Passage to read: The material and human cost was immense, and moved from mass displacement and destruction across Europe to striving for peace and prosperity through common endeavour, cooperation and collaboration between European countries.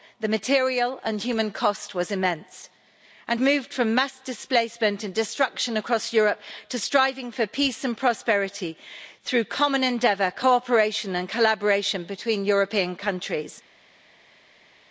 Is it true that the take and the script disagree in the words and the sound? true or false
false